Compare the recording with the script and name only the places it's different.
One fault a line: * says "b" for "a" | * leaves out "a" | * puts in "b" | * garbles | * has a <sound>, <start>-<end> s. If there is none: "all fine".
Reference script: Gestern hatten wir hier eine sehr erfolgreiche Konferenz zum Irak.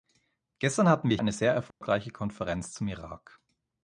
* leaves out "hier"
* has a dropout, 1.7-1.8 s